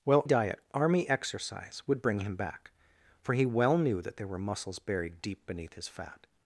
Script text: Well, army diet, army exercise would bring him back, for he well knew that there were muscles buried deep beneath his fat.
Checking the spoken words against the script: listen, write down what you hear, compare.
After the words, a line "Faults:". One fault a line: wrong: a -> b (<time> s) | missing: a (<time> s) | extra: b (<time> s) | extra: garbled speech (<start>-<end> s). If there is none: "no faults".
Well, diet, army exercise would bring him back, for he well knew that there were muscles buried deep beneath his fat.
Faults:
missing: army (0.2 s)